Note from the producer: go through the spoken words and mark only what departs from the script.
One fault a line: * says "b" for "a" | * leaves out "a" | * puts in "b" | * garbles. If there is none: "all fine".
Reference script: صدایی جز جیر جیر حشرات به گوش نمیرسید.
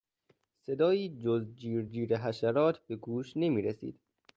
all fine